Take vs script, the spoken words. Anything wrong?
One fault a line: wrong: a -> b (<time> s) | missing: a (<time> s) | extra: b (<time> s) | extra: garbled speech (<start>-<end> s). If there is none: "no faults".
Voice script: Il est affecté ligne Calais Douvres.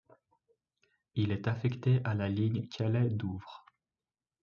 extra: à la (2.0 s)